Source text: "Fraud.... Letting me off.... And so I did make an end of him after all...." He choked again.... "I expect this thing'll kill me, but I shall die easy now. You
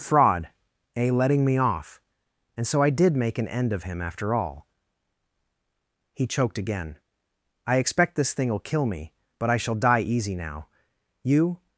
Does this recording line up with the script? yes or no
no